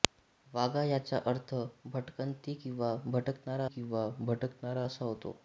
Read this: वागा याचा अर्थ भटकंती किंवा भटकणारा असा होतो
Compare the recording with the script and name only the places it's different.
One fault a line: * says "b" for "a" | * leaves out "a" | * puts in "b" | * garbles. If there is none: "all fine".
* puts in "किंवा भटकणारा"